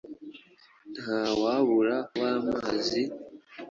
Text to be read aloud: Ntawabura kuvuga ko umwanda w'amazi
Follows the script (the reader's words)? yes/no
no